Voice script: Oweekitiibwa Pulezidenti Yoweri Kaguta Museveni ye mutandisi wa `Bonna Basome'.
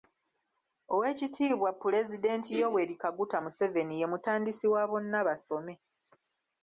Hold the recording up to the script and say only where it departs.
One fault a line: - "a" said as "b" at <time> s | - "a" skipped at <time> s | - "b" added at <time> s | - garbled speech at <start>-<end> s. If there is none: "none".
none